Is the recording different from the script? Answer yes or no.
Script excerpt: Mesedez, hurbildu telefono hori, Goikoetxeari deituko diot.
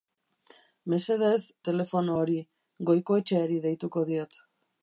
yes